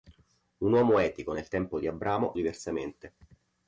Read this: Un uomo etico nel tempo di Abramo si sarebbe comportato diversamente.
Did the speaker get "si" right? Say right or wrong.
wrong